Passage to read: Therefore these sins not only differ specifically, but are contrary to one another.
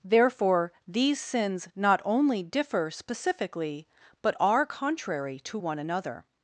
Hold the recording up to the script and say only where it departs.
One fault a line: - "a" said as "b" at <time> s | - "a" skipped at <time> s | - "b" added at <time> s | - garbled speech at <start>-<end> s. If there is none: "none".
none